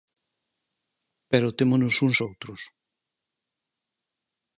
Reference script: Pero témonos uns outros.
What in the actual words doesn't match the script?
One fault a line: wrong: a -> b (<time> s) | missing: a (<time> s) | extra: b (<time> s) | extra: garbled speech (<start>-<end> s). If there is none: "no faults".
no faults